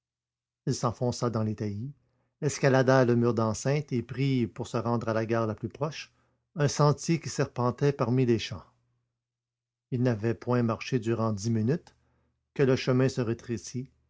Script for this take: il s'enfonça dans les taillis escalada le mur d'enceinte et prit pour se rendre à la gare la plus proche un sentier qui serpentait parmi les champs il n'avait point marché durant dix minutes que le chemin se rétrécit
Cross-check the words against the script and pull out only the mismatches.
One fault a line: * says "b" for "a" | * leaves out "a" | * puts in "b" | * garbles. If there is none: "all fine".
all fine